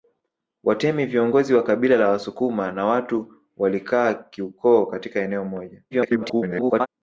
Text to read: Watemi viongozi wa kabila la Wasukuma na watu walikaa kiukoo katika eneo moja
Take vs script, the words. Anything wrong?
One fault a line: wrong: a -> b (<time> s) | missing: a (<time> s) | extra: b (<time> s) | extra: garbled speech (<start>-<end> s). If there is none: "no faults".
extra: garbled speech (5.9-6.9 s)